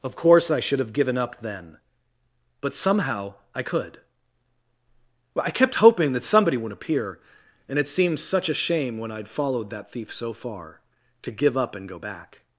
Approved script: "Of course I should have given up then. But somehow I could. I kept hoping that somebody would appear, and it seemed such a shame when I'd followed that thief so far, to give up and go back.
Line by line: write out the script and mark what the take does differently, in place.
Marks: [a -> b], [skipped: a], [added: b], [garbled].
"Of course I should have given up then. But somehow I could. I kept hoping that somebody would appear, and it seemed such a shame when I'd followed that thief so far, to give up and go back.